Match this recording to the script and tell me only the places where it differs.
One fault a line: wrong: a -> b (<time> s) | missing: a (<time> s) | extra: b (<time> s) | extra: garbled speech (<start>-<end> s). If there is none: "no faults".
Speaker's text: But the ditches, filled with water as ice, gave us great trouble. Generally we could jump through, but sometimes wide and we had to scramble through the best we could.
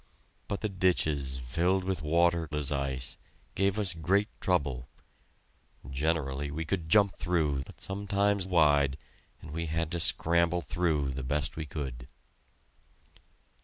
no faults